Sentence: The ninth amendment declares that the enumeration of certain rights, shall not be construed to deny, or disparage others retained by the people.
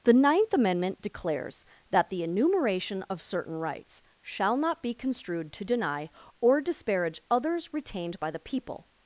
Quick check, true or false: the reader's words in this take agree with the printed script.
true